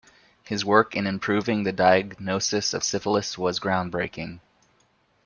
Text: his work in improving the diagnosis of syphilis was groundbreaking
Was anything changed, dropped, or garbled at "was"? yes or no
no